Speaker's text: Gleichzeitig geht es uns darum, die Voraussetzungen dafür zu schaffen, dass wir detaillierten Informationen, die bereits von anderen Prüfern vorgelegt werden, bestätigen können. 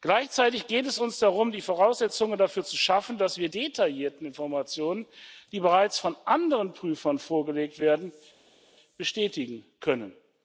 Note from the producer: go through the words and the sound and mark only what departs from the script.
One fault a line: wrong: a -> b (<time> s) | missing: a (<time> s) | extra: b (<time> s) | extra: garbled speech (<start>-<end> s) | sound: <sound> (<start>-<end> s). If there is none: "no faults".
no faults